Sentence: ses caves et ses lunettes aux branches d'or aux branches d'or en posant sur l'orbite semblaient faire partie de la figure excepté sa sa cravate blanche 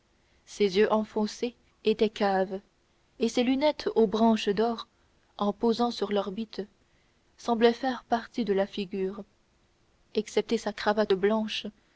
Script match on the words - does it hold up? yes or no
no